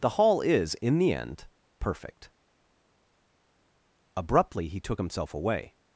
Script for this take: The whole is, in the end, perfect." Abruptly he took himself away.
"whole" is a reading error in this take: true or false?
true